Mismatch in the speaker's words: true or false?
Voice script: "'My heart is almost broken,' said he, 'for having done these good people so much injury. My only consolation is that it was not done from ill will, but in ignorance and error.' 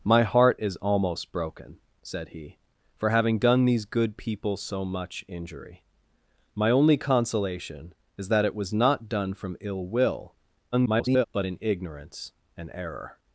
true